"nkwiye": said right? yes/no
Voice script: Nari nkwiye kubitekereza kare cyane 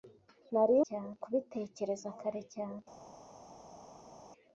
no